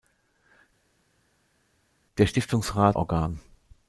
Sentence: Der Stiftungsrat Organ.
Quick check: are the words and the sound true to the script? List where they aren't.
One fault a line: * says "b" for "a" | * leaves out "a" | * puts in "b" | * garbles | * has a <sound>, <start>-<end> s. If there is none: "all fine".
all fine